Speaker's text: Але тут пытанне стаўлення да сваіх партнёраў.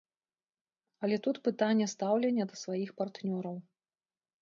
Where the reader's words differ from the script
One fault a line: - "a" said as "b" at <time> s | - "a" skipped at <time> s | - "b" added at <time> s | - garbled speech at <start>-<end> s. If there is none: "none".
none